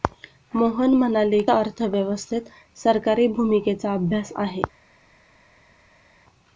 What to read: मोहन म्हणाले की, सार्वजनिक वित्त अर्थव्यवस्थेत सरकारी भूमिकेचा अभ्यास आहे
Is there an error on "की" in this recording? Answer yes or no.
yes